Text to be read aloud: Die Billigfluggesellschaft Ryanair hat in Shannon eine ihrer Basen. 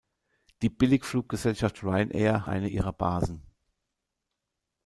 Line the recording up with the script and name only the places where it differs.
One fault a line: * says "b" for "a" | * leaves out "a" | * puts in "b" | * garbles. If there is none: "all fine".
* leaves out "hat in Shannon"